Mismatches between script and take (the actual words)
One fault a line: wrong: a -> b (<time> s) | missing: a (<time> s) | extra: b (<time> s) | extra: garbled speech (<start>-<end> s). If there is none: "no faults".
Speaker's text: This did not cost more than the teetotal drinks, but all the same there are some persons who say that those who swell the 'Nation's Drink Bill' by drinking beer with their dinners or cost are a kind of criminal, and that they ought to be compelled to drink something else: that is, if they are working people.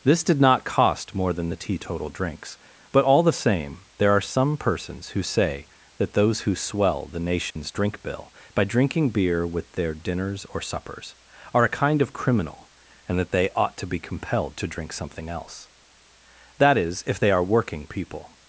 wrong: cost -> suppers (10.6 s)